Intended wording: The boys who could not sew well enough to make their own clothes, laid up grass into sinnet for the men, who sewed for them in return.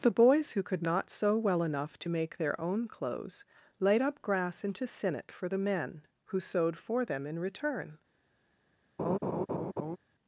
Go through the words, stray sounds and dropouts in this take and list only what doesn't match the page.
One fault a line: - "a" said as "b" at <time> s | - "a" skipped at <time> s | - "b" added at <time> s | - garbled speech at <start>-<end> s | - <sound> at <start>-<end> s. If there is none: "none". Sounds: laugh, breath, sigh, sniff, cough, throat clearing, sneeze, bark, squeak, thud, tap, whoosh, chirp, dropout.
- laugh at 9.0-10.0 s